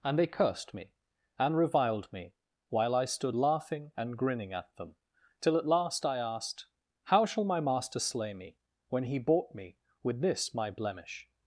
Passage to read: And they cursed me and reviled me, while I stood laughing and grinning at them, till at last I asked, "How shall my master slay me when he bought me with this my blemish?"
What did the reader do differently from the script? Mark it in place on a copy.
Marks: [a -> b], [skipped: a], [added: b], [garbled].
And they cursed me and reviled me, while I stood laughing and grinning at them, till at last I asked, "How shall my master slay me when he bought me with this my blemish?"